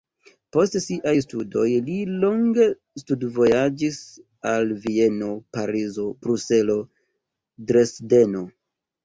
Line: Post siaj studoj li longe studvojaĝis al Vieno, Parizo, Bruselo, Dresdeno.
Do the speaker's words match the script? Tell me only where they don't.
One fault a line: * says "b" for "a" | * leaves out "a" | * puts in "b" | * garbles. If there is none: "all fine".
all fine